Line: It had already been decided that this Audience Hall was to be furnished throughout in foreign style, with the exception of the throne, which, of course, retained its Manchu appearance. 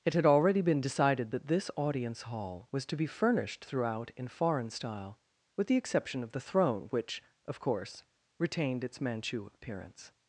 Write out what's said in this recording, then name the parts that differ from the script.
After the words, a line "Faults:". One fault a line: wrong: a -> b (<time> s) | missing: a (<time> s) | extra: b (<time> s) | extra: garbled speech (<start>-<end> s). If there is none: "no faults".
It had already been decided that this Audience Hall was to be furnished throughout in foreign style, with the exception of the throne, which, of course, retained its Manchu appearance.
Faults:
no faults